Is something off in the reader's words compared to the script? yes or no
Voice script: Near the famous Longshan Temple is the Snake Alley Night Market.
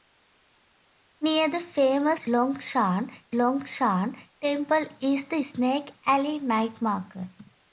yes